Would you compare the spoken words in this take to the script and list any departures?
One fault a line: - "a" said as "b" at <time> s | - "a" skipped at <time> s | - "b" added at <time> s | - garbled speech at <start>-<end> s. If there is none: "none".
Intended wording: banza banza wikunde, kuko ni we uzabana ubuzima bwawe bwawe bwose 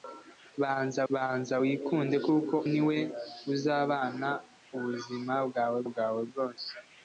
none